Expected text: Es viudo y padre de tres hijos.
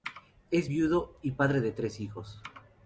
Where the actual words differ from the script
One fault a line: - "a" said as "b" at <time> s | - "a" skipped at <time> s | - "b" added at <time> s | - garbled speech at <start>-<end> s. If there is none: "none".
none